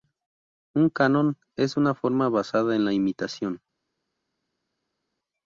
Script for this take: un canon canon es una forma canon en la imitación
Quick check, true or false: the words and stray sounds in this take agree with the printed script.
false